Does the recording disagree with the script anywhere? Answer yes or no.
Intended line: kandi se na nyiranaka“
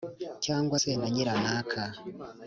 yes